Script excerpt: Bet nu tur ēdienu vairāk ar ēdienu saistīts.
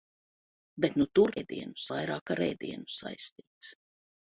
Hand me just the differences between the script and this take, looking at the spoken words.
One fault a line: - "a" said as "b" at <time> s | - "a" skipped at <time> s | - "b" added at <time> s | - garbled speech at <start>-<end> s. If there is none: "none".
none